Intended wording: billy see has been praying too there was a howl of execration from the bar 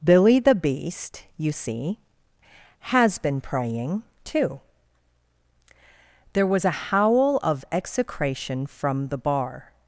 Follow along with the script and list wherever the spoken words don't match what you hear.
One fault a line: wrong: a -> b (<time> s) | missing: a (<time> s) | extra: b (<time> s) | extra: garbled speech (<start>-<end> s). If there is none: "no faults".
extra: the beast you (0.4 s)